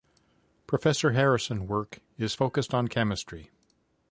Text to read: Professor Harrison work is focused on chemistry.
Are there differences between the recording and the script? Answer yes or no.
no